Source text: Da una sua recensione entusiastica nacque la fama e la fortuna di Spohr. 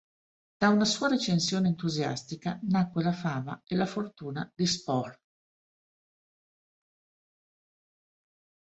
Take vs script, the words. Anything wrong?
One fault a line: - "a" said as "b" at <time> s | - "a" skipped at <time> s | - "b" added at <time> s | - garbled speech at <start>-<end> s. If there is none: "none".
none